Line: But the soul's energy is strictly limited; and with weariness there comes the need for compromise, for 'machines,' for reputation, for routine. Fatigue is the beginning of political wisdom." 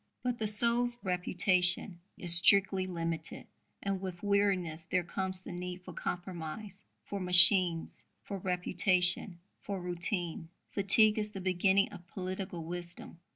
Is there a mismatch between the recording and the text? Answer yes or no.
yes